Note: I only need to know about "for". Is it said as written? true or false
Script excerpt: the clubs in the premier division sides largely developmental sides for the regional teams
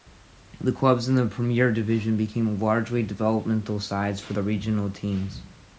true